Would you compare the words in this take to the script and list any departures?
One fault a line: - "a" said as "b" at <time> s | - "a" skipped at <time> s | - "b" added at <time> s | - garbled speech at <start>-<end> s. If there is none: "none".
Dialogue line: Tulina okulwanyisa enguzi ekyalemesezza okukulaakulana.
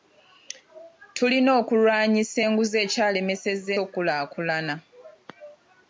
none